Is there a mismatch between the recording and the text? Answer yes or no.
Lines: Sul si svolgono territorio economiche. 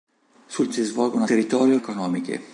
no